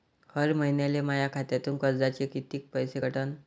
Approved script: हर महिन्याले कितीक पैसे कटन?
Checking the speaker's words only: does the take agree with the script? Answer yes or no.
no